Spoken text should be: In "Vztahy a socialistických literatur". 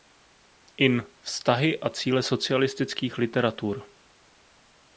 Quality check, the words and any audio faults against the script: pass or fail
fail